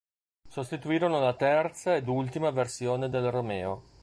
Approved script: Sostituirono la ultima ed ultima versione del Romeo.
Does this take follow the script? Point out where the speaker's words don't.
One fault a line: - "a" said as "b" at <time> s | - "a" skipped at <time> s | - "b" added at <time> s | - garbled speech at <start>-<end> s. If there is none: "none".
- "ultima" said as "terza" at 1.4 s